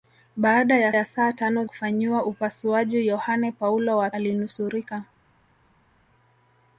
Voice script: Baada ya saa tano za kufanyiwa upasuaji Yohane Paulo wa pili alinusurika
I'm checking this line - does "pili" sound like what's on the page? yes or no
no